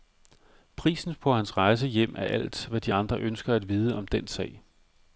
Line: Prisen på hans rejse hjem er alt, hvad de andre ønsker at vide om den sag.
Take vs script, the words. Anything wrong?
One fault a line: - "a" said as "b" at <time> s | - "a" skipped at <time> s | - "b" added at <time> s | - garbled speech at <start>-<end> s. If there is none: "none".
none